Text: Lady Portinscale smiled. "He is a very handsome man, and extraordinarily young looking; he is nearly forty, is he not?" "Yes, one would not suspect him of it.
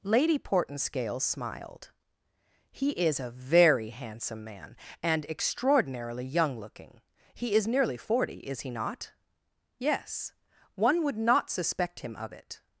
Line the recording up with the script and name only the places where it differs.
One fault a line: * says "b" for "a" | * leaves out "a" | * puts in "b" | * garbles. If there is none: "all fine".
all fine